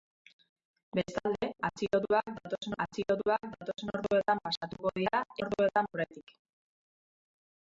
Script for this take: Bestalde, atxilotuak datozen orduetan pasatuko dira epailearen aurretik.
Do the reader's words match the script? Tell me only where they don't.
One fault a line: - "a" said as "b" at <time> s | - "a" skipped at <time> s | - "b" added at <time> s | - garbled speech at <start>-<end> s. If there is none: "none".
- "atxilotuak datozen" added at 2.9 s
- "epailearen" said as "orduetan" at 5.5 s